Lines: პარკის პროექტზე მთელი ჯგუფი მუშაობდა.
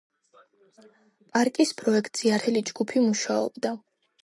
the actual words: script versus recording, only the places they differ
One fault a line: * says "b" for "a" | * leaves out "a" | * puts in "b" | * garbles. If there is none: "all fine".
all fine